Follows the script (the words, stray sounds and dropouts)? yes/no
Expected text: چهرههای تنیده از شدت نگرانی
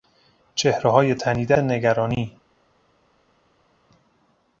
no